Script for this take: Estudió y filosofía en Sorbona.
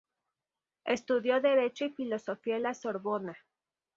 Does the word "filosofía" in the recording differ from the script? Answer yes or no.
no